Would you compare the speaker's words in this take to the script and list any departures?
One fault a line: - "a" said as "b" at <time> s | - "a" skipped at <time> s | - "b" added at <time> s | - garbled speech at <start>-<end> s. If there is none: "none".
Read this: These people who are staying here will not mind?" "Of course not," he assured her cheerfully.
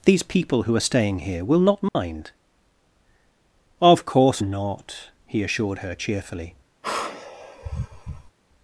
none